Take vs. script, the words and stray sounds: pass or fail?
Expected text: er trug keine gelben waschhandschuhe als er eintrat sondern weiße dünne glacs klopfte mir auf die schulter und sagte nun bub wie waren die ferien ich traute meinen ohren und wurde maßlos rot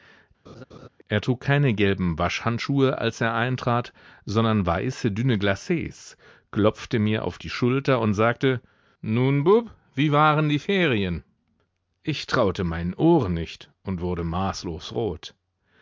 fail